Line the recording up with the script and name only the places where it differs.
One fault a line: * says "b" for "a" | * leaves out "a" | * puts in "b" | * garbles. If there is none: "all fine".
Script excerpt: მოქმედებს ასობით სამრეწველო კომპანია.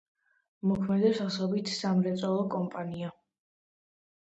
all fine